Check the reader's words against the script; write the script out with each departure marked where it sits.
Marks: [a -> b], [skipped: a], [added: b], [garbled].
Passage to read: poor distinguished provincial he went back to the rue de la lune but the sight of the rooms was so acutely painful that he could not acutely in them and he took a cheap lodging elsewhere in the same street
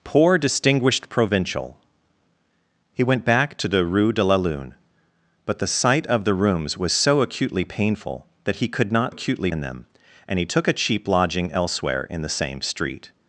poor distinguished provincial he went back to the rue de la lune but the sight of the rooms was so acutely painful that he could not acutely in them and he took a cheap lodging elsewhere in the same street